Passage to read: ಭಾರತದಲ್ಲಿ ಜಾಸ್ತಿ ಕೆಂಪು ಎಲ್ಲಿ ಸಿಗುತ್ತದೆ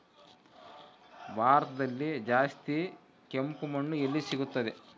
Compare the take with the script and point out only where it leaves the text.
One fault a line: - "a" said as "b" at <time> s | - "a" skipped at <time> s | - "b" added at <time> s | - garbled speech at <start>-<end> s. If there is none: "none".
- "ಮಣ್ಣು" added at 3.7 s